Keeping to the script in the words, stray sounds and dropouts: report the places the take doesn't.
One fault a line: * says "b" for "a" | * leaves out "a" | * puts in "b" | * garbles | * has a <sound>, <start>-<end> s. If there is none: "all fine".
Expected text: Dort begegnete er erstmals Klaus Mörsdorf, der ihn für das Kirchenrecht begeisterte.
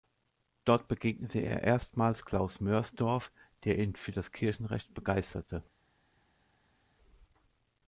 all fine